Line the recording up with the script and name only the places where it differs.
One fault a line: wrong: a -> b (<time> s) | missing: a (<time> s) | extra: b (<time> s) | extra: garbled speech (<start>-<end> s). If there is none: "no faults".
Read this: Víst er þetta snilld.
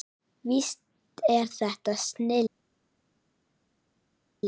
no faults